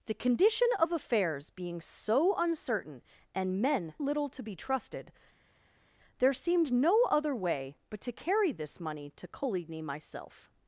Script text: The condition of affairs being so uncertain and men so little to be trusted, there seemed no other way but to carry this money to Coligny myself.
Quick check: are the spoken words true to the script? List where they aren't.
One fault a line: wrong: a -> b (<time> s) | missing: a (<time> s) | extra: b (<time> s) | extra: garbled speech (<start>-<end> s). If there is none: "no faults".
missing: so (3.9 s)